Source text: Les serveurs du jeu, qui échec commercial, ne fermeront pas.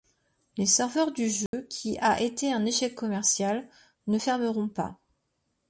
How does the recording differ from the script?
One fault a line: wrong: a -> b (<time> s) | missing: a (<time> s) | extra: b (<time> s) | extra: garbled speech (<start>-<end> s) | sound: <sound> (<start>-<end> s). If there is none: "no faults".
sound: dropout (1.5-1.5 s)
extra: a été un (2.0 s)